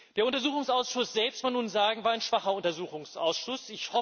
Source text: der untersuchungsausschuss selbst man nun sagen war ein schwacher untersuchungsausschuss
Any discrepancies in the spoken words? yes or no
no